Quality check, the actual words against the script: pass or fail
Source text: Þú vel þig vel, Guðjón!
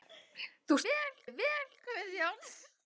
pass